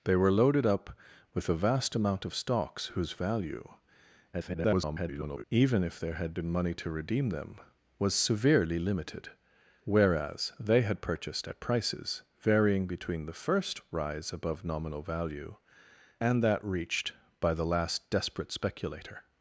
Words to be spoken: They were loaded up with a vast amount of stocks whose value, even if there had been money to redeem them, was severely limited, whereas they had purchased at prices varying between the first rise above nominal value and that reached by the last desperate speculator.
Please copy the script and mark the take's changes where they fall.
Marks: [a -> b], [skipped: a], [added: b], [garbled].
They were loaded up with a vast amount of stocks whose value, [garbled] even if there had been money to redeem them, was severely limited, whereas they had purchased at prices varying between the first rise above nominal value and that reached by the last desperate speculator.